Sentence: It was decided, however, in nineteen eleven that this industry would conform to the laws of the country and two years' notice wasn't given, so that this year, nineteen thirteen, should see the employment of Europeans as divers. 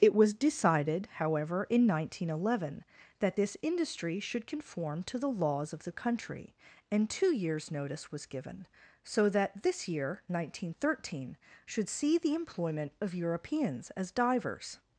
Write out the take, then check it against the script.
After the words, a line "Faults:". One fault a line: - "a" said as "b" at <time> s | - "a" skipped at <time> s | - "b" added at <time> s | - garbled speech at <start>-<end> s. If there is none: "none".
It was decided, however, in nineteen eleven that this industry should conform to the laws of the country and two years' notice was given, so that this year, nineteen thirteen, should see the employment of Europeans as divers.
Faults:
- "would" said as "should" at 4.2 s
- "wasn't" said as "was" at 8.1 s